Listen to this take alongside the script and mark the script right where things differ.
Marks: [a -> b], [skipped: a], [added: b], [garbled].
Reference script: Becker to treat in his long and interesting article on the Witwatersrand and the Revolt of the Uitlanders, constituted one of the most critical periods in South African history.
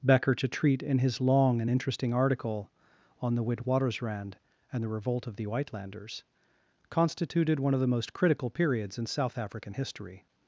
Becker to treat in his long and interesting article on the Witwatersrand and the Revolt of the Uitlanders, constituted one of the most critical periods in South African history.